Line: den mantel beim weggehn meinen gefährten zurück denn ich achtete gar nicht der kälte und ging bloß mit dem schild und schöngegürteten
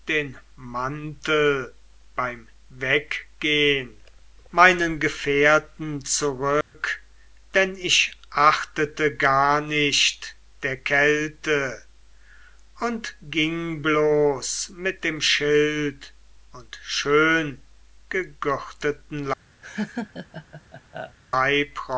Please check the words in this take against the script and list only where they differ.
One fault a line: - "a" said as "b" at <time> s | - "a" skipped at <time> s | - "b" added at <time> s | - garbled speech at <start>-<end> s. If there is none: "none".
none